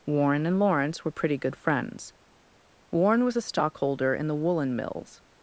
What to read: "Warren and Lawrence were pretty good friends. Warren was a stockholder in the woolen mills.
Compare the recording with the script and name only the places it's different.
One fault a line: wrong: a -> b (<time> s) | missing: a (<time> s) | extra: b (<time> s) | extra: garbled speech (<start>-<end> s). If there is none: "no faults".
no faults